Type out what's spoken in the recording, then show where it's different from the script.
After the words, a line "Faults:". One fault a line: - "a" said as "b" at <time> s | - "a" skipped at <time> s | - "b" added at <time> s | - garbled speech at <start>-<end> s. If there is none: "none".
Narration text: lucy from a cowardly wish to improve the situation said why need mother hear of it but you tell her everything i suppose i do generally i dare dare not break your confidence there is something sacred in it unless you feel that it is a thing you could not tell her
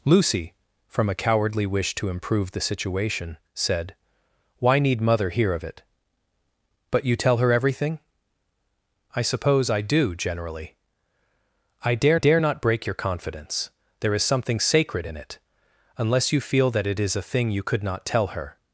lucy from a cowardly wish to improve the situation said why need mother hear of it but you tell her everything i suppose i do generally i dare dare not break your confidence there is something sacred in it unless you feel that it is a thing you could not tell her
Faults:
none